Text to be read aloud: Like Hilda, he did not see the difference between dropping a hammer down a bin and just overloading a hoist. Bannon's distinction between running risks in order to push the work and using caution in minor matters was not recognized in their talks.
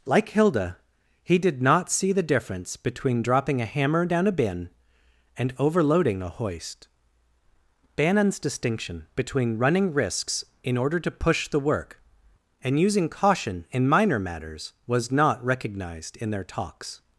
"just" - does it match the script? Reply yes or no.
no